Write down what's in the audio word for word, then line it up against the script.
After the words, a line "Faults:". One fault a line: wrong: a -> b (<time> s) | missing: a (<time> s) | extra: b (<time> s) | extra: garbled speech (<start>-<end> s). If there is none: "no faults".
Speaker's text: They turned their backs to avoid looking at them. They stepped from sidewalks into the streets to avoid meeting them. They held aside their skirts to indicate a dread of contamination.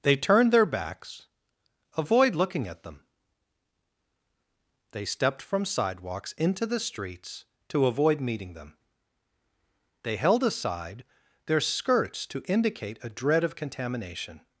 They turned their backs avoid looking at them. They stepped from sidewalks into the streets to avoid meeting them. They held aside their skirts to indicate a dread of contamination.
Faults:
missing: to (1.3 s)